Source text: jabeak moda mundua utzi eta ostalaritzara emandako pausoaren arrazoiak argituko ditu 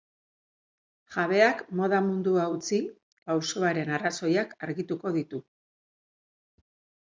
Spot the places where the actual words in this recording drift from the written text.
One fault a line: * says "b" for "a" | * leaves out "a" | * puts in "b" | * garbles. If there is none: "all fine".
* leaves out "eta ostalaritzara emandako"